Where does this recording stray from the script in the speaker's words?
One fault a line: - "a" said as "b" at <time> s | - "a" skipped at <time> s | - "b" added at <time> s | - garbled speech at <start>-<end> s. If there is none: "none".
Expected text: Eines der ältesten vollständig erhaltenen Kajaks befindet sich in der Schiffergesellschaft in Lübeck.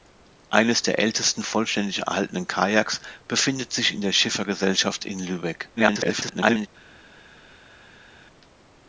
- garbled speech at 5.8-6.7 s